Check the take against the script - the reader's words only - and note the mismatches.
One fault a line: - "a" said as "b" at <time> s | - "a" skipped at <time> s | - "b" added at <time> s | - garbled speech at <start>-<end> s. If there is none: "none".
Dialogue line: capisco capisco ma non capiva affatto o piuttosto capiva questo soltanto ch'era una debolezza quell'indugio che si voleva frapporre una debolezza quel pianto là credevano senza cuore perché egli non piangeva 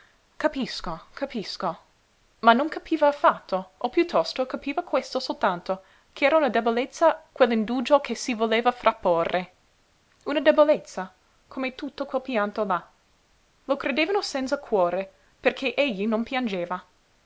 - "come tutto" added at 11.5 s
- "lo" added at 13.7 s